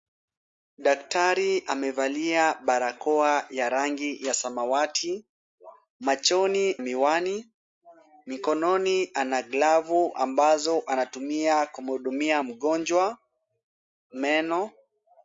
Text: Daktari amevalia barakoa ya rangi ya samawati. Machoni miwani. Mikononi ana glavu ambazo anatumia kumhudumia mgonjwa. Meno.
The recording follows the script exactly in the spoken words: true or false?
true